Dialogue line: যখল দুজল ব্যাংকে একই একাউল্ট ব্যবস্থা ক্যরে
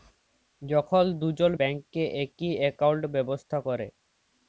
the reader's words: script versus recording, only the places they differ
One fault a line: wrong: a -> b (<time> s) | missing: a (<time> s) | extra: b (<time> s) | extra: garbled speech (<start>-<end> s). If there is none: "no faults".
no faults